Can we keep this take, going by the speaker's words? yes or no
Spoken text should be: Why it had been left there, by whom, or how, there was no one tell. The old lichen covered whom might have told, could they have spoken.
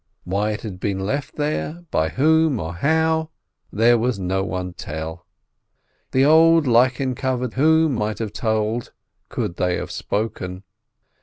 yes